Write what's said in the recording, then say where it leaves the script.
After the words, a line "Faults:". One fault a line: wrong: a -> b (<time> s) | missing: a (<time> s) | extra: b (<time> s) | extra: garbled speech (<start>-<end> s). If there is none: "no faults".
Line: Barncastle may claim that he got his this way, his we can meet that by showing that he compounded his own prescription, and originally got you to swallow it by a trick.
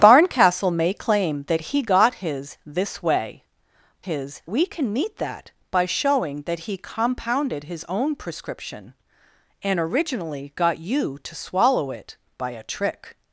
Barncastle may claim that he got his this way, his we can meet that by showing that he compounded his own prescription, and originally got you to swallow it by a trick.
Faults:
no faults